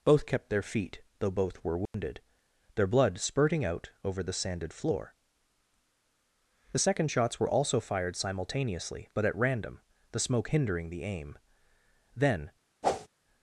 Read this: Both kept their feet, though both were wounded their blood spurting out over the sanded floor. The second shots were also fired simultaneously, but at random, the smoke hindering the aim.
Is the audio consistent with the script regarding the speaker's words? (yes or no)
no